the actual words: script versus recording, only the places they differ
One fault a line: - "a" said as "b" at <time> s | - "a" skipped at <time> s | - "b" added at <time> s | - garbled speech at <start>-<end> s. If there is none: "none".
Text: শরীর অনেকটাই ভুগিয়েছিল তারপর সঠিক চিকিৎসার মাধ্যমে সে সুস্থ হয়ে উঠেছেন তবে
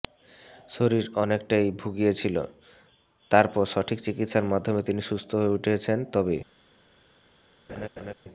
- "সে" said as "তিনি" at 4.8 s